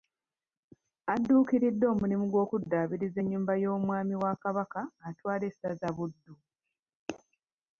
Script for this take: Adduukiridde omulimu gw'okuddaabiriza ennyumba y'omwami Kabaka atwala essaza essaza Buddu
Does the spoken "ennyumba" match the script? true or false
true